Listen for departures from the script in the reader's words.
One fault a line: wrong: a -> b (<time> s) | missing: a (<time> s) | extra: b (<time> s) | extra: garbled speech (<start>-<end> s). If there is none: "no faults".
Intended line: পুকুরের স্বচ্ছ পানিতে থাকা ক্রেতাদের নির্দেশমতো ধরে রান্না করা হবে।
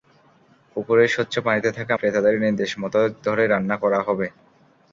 no faults